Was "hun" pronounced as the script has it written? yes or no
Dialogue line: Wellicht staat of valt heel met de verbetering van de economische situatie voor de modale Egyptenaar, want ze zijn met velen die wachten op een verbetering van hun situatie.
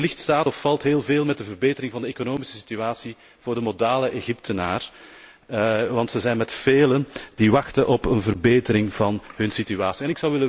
yes